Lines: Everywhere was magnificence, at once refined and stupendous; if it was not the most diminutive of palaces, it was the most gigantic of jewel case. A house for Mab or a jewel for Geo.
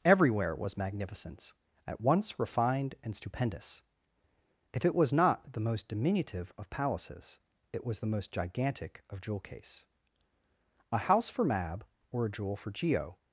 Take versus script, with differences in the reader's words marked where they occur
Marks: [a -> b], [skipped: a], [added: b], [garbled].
Everywhere was magnificence, at once refined and stupendous; if it was not the most diminutive of palaces, it was the most gigantic of jewel case. A house for Mab or a jewel for Geo.